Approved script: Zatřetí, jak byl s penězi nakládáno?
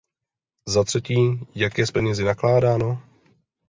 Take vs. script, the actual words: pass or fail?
fail